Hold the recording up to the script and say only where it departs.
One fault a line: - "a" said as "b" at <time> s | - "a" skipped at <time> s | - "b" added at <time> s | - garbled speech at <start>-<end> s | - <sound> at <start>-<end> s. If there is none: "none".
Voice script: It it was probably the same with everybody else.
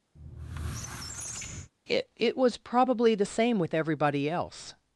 - squeak at 0.2-1.7 s